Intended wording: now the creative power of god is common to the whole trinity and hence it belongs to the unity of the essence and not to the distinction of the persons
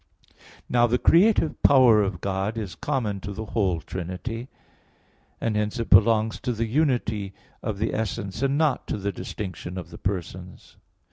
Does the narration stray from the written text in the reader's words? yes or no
no